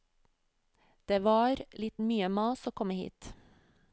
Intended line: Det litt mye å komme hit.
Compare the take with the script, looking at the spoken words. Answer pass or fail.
fail